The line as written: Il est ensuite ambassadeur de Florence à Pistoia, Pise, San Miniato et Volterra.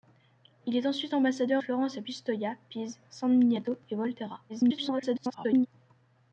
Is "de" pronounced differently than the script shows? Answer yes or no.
yes